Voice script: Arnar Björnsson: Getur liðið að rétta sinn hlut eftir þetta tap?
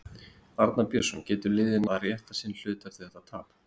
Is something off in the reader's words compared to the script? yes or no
no